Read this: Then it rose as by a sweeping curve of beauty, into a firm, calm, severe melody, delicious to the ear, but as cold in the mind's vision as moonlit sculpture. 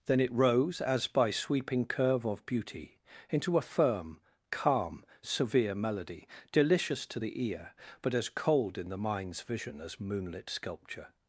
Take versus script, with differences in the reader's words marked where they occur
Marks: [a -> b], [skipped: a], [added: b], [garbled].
Then it rose as by [skipped: a] sweeping curve of beauty, into a firm, calm, severe melody, delicious to the ear, but as cold in the mind's vision as moonlit sculpture.